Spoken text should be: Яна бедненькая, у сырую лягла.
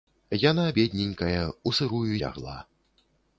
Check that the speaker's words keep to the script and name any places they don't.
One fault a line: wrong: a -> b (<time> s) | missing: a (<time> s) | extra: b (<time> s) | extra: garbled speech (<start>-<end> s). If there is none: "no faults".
no faults